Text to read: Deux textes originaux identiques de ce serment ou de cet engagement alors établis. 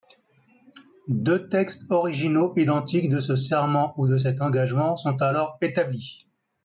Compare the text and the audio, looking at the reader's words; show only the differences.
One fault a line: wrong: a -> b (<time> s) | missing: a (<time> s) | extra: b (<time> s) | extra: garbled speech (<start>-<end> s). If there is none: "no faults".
extra: sont (5.0 s)